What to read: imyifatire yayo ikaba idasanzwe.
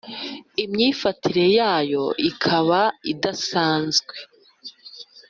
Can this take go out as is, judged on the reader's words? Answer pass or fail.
pass